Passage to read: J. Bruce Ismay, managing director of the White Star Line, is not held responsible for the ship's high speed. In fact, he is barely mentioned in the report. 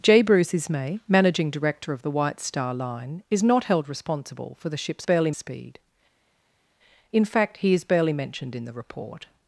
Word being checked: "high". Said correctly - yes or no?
no